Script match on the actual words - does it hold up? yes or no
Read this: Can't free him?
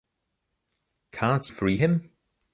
yes